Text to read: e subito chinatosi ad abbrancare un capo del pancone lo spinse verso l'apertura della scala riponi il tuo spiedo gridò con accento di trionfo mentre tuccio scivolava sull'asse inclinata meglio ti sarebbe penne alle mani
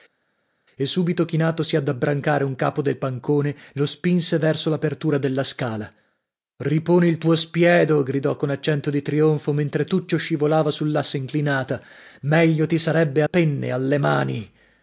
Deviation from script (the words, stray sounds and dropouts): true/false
false